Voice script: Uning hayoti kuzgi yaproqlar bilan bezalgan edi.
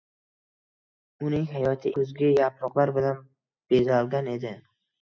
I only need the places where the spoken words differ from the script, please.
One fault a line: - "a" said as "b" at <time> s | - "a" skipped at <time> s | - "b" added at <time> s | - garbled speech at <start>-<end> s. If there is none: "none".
none